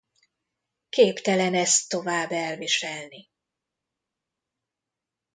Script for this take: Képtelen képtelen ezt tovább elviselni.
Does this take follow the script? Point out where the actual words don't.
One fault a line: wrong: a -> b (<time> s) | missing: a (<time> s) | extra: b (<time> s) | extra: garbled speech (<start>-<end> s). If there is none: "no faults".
missing: képtelen (1.5 s)